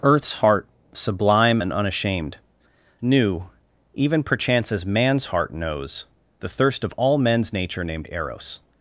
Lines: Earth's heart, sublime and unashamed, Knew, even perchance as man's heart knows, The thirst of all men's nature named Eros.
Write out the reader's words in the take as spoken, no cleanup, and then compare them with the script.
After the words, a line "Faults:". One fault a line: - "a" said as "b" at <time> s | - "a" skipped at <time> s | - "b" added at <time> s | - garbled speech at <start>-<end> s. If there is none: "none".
Earth's heart, sublime and unashamed, Knew, even perchance as man's heart knows, The thirst of all men's nature named Eros.
Faults:
none